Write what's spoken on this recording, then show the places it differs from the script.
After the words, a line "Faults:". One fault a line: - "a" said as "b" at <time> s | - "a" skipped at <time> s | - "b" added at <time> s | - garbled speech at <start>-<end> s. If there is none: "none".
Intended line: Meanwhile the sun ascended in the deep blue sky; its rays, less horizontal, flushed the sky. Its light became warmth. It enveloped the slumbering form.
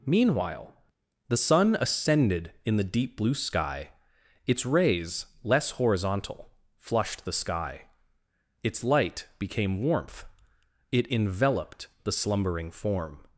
Meanwhile the sun ascended in the deep blue sky; its rays, less horizontal, flushed the sky. Its light became warmth. It enveloped the slumbering form.
Faults:
none